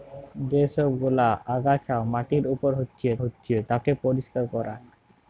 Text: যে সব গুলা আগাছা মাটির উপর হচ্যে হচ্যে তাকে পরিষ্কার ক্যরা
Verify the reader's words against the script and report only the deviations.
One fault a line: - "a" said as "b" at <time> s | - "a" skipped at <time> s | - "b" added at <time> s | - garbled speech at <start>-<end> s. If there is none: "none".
none